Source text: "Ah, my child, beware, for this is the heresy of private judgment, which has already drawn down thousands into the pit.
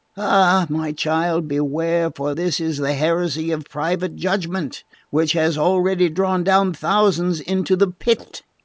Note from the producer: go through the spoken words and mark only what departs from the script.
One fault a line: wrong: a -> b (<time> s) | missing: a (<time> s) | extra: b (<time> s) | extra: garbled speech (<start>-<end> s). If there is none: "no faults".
no faults